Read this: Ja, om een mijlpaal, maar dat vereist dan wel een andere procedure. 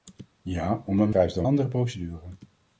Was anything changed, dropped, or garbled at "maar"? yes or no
yes